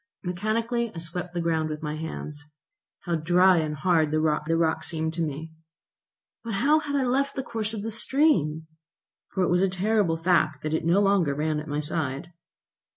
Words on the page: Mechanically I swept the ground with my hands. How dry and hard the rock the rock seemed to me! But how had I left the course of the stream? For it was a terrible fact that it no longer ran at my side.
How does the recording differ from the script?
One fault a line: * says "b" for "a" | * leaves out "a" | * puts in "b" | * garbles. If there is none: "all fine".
all fine